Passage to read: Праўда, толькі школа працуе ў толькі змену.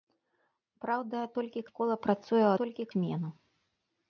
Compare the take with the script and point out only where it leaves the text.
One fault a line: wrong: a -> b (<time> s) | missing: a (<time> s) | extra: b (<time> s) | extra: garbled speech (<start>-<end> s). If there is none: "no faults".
no faults